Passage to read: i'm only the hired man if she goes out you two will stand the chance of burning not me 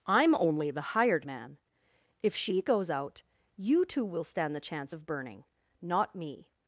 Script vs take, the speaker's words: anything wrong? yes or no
no